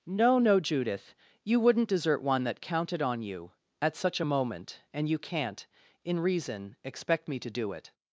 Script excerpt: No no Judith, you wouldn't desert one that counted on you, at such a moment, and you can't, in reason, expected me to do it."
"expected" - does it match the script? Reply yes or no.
no